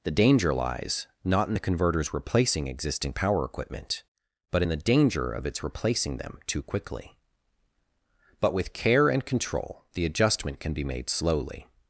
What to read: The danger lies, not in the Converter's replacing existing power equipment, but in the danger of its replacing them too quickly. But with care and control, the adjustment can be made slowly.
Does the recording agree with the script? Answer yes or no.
yes